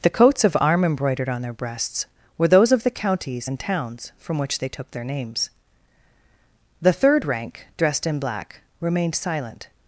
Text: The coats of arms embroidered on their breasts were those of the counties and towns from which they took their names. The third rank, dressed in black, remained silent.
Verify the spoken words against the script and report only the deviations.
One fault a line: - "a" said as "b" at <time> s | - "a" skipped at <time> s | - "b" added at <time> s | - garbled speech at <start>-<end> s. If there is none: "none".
- "arms" said as "arm" at 0.6 s